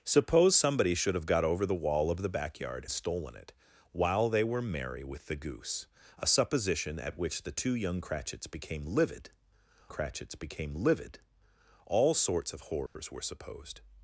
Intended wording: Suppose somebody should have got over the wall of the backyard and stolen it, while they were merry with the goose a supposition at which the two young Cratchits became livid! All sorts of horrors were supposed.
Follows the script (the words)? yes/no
no